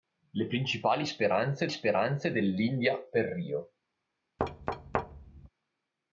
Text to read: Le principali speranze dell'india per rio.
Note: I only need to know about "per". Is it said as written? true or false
true